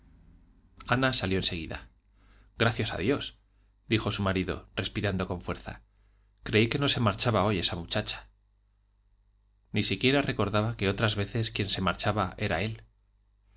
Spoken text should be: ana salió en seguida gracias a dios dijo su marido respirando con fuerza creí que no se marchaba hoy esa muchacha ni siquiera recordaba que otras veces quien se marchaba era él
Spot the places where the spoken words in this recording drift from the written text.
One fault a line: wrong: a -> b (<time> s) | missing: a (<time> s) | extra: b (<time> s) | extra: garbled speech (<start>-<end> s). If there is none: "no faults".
no faults